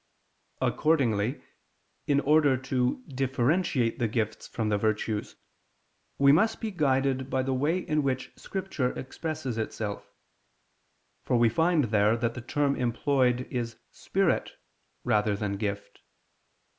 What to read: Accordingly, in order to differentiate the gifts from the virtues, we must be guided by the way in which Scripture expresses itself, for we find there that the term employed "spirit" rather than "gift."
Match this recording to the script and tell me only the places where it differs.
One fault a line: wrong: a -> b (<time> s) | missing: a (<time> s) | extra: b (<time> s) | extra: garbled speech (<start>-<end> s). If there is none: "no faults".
extra: is (13.5 s)